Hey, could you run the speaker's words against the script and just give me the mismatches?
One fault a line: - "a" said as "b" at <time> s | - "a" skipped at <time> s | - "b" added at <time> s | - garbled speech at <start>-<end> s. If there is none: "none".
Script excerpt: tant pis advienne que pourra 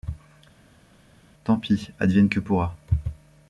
none